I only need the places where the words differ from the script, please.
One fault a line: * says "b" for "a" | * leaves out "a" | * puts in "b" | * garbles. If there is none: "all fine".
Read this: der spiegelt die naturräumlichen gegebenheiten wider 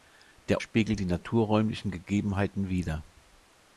all fine